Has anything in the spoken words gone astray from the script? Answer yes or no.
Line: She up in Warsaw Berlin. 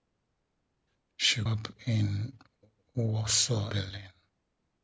no